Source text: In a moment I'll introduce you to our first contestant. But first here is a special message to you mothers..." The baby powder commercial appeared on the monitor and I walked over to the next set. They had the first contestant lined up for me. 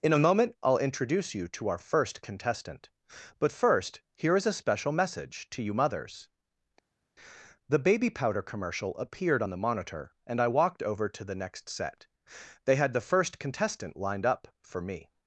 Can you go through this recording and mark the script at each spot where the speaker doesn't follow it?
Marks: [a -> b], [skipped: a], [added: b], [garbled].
In a moment I'll introduce you to our first contestant. But first here is a special message to you mothers..." The baby powder commercial appeared on the monitor and I walked over to the next set. They had the first contestant lined up for me.